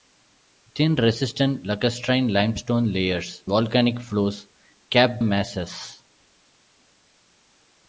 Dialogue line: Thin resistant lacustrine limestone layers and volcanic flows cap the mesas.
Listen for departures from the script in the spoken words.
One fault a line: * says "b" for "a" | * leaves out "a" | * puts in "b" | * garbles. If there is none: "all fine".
* leaves out "and"
* leaves out "the"